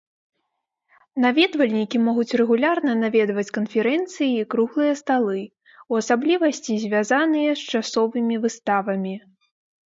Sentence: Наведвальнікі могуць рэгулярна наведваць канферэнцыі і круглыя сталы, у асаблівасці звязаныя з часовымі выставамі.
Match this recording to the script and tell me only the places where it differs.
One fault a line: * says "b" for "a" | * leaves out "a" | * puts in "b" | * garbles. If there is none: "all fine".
all fine